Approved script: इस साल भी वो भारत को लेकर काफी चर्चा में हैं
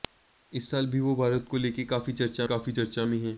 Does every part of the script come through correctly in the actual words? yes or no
no